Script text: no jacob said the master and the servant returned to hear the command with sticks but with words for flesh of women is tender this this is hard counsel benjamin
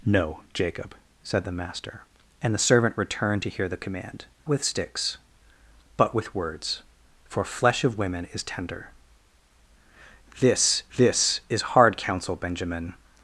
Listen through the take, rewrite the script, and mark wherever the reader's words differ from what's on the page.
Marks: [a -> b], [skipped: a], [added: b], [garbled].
no jacob said the master and the servant returned to hear the command with sticks but with words for flesh of women is tender this this is hard counsel benjamin